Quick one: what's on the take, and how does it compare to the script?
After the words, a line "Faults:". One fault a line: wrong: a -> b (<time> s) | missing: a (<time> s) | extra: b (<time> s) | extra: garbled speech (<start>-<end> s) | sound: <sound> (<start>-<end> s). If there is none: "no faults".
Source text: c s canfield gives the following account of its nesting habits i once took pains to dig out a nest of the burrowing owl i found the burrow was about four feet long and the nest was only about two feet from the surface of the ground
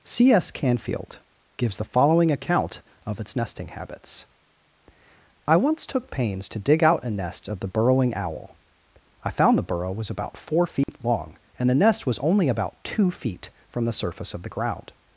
c s canfield gives the following account of its nesting habits i once took pains to dig out a nest of the burrowing owl i found the burrow was about four feet long and the nest was only about two feet from the surface of the ground
Faults:
sound: dropout (10.8-10.9 s)